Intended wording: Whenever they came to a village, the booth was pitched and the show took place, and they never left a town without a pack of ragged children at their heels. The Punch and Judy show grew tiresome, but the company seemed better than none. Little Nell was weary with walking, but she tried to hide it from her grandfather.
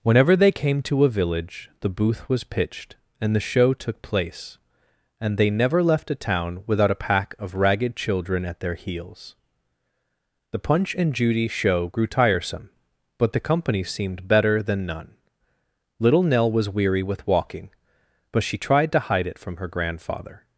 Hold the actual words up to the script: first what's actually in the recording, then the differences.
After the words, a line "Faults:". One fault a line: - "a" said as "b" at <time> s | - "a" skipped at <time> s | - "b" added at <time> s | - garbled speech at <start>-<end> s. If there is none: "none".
Whenever they came to a village, the booth was pitched and the show took place, and they never left a town without a pack of ragged children at their heels. The Punch and Judy show grew tiresome, but the company seemed better than none. Little Nell was weary with walking, but she tried to hide it from her grandfather.
Faults:
none